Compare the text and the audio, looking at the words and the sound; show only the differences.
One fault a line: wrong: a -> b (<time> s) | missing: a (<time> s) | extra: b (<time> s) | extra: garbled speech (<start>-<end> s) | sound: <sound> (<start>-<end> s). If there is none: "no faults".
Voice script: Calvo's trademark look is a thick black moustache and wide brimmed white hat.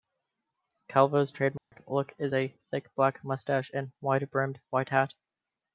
sound: dropout (1.6-1.7 s)